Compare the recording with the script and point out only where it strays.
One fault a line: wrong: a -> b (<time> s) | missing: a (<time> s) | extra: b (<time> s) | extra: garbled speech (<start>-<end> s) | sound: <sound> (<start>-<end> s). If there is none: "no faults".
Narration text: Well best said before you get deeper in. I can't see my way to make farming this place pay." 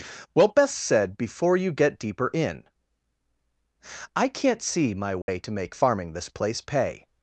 sound: dropout (5.2-5.3 s)